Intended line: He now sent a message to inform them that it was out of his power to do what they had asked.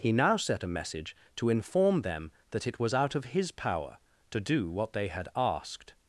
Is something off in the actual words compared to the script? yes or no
yes